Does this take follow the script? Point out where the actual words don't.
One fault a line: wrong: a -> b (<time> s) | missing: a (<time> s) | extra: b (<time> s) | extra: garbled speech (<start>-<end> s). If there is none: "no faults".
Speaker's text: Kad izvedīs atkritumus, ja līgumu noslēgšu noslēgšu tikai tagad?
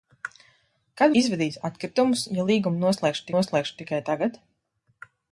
no faults